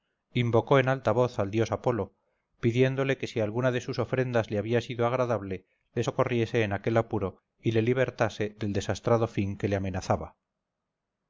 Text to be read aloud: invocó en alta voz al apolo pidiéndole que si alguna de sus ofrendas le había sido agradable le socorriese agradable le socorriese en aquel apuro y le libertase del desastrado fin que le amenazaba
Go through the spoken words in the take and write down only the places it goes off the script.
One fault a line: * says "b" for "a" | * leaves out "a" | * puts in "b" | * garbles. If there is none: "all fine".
* puts in "dios"
* leaves out "agradable le socorriese"